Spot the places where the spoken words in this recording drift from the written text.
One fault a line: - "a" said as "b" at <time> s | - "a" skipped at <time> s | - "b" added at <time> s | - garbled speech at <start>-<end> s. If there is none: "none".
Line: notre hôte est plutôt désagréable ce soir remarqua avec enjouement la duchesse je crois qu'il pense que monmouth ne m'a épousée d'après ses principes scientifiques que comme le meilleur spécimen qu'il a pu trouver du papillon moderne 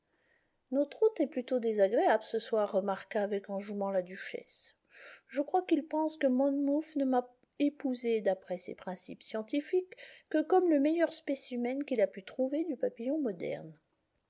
none